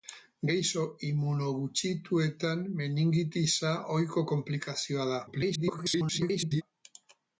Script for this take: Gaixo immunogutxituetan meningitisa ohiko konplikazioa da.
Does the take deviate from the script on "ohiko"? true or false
false